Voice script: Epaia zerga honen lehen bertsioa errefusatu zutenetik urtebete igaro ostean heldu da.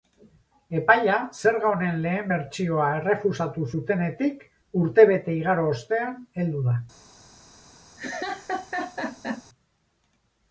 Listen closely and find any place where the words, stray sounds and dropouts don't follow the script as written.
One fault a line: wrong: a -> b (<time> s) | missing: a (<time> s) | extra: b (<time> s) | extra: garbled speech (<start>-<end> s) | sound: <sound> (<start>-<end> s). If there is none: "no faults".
sound: laugh (8.0-9.4 s)